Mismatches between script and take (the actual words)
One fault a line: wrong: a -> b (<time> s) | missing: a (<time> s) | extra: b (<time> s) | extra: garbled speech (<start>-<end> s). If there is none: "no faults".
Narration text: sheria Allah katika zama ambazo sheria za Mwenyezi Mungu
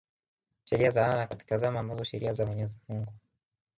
extra: za (0.9 s)